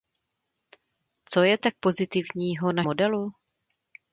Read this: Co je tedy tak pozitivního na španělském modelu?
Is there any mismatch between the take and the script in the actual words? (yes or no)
yes